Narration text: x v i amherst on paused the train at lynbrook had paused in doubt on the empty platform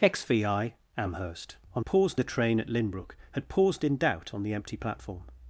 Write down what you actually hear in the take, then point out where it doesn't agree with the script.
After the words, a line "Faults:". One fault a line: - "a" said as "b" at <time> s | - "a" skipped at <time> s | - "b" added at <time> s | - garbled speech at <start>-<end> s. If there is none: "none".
x v i amherst on paused the train at lynbrook had paused in doubt on the empty platform
Faults:
none